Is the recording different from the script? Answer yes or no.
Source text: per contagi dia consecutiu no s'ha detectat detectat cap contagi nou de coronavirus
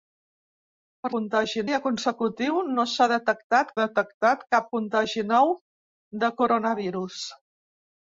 no